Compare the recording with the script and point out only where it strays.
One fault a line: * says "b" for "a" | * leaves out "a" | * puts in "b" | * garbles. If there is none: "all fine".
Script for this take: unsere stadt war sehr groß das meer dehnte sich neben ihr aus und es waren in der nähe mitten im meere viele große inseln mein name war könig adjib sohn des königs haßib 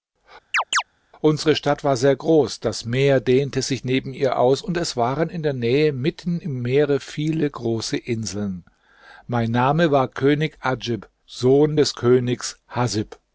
all fine